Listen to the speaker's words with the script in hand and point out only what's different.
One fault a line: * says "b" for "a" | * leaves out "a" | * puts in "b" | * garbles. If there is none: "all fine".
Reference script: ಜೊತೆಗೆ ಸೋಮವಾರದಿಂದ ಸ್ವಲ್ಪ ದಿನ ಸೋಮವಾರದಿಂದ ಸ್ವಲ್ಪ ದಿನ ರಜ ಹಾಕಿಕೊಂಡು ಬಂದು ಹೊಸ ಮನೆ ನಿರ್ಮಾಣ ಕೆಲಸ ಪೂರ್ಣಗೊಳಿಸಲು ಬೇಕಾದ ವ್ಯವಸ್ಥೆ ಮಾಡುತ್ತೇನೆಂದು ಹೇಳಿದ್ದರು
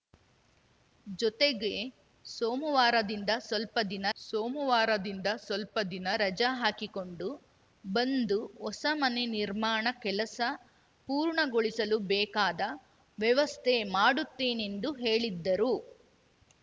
all fine